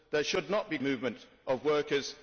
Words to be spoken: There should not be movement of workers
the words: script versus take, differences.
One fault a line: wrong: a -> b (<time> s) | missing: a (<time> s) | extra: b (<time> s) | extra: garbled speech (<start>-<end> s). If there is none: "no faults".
no faults